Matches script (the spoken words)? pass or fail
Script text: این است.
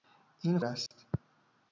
pass